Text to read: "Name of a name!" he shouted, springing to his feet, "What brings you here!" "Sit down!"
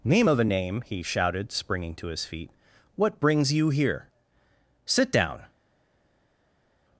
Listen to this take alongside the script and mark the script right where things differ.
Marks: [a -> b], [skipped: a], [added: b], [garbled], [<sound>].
"Name of a name!" he shouted, springing to his feet, "What brings you here!" "Sit down!"